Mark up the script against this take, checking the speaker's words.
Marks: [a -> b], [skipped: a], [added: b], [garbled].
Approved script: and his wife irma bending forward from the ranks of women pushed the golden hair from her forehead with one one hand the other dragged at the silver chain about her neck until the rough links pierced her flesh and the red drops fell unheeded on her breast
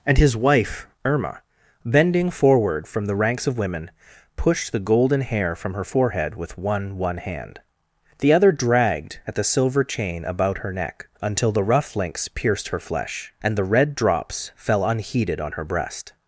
and his wife irma bending forward from the ranks of women pushed the golden hair from her forehead with one one hand the other dragged at the silver chain about her neck until the rough links pierced her flesh and the red drops fell unheeded on her breast